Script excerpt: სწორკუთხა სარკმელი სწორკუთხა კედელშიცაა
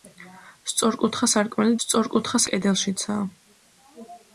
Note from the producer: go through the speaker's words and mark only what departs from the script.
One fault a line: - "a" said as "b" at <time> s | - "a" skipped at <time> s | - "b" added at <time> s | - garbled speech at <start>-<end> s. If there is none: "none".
none